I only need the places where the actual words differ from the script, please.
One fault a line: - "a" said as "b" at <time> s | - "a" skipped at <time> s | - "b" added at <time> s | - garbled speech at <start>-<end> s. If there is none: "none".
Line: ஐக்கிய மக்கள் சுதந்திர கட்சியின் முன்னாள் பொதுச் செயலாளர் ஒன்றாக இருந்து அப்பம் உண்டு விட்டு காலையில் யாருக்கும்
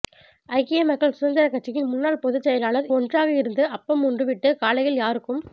none